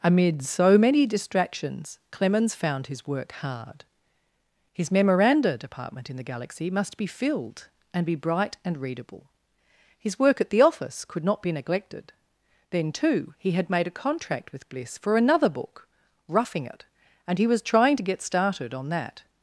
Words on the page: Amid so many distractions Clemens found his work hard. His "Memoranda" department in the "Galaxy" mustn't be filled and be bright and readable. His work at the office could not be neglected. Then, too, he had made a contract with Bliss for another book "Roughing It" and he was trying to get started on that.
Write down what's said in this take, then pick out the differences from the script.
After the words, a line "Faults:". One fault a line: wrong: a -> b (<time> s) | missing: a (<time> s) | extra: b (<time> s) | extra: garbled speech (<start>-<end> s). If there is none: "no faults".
Amid so many distractions Clemens found his work hard. His "Memoranda" department in the "Galaxy" must be filled and be bright and readable. His work at the office could not be neglected. Then, too, he had made a contract with Bliss for another book "Roughing It" and he was trying to get started on that.
Faults:
wrong: mustn't -> must (6.7 s)